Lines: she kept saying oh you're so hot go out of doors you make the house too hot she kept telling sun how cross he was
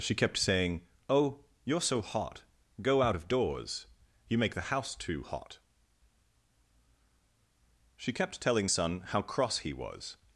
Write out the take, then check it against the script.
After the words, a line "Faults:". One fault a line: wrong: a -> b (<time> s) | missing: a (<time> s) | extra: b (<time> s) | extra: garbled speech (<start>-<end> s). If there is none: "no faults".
she kept saying oh you're so hot go out of doors you make the house too hot she kept telling sun how cross he was
Faults:
no faults